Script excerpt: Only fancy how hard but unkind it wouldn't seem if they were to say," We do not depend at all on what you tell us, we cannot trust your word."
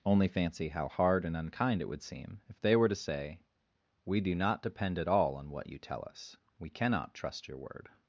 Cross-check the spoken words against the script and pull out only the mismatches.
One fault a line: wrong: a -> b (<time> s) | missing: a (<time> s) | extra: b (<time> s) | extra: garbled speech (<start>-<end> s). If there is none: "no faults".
wrong: but -> and (1.2 s)
wrong: wouldn't -> would (1.9 s)